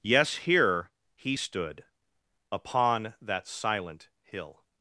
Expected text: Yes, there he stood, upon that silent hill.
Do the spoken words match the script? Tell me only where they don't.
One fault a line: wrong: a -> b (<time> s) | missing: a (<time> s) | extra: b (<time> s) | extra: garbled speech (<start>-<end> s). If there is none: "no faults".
wrong: there -> here (0.4 s)